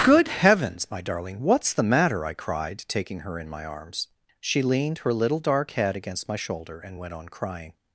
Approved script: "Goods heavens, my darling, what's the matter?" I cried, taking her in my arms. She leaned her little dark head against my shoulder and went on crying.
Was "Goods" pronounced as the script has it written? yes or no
no